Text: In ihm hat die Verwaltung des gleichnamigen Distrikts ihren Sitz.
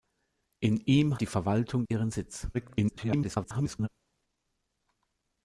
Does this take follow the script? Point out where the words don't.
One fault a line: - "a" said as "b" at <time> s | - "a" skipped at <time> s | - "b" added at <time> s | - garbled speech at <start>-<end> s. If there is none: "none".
- "hat" skipped at 1.2 s
- "des gleichnamigen Distrikts" skipped at 1.8 s
- garbled speech at 2.5-3.9 s